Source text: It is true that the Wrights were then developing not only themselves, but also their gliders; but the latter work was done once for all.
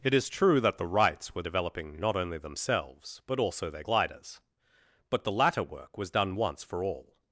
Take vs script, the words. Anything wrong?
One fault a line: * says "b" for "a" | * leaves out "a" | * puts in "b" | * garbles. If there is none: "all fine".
* leaves out "then"